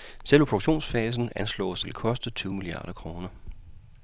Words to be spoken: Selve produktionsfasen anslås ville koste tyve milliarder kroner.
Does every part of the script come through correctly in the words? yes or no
yes